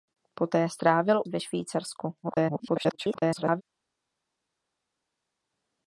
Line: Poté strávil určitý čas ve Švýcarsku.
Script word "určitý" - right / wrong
wrong